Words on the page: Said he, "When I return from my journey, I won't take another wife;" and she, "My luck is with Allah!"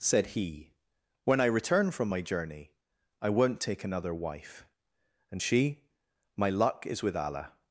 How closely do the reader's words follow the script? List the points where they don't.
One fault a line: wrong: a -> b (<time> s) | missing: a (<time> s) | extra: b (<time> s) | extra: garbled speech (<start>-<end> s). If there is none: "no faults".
no faults